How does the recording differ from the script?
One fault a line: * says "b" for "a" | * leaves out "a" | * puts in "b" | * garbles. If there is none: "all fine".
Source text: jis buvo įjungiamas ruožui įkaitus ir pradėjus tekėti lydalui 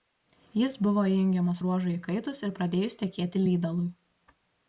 all fine